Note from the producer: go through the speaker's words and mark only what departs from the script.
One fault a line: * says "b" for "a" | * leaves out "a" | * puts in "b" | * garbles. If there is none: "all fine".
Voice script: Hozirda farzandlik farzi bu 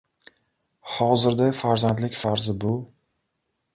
all fine